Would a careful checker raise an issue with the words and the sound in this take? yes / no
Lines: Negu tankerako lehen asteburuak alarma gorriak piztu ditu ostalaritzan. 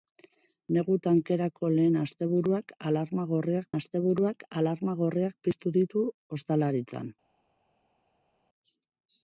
yes